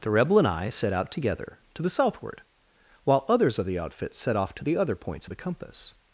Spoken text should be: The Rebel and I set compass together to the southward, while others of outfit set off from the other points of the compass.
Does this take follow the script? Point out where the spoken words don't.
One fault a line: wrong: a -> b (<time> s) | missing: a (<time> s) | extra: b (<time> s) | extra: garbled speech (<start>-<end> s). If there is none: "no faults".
wrong: compass -> out (0.9 s)
extra: the (3.7 s)
wrong: from -> to (4.5 s)